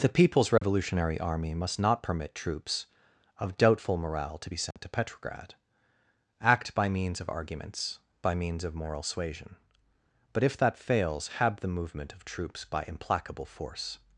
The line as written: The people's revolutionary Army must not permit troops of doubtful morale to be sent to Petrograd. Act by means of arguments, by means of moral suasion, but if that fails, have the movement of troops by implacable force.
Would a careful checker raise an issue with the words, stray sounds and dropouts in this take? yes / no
yes